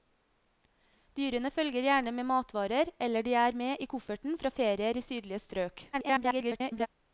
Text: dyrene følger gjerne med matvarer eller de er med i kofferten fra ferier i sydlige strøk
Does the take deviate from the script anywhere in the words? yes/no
yes